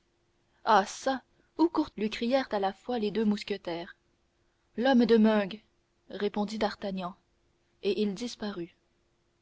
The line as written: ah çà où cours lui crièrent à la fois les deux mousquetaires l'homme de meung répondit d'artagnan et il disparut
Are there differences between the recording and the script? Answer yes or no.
no